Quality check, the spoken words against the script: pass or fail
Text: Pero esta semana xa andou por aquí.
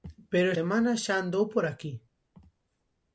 fail